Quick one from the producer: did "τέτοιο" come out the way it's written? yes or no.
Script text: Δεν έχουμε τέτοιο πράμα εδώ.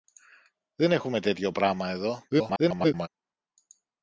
yes